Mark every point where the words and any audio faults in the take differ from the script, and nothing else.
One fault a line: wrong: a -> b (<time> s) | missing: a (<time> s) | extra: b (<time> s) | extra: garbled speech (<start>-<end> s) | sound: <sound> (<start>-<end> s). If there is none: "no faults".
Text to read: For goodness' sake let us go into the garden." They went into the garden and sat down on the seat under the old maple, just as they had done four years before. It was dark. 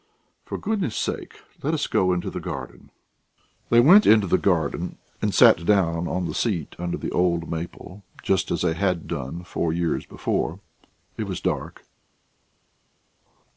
no faults